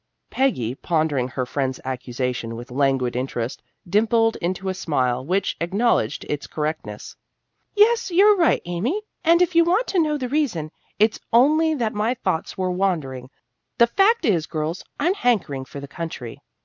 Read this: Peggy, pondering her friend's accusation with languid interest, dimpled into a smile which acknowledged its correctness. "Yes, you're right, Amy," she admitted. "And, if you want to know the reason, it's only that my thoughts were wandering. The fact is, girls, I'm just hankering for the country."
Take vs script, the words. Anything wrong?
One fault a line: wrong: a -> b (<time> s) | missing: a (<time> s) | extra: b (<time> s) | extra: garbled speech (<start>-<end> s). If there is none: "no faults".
missing: she admitted (9.0 s)
missing: just (15.1 s)